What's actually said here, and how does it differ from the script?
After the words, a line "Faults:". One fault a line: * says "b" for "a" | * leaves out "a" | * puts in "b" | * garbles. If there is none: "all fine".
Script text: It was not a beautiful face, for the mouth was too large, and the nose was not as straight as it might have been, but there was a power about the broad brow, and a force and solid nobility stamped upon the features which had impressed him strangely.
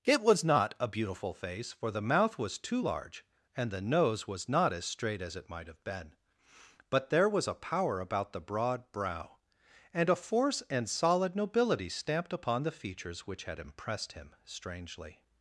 It was not a beautiful face, for the mouth was too large, and the nose was not as straight as it might have been, but there was a power about the broad brow, and a force and solid nobility stamped upon the features which had impressed him strangely.
Faults:
all fine